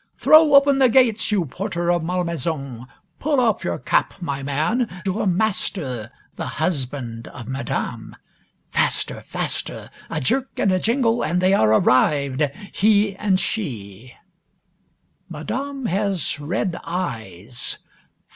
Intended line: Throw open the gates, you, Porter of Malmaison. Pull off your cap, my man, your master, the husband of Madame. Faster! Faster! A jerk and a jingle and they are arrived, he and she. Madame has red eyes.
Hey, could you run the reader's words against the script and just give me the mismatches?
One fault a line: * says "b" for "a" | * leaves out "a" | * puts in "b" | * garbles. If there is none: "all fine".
all fine